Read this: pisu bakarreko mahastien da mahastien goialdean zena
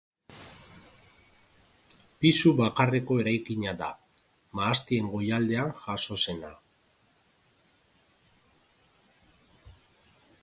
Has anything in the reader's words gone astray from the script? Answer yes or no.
yes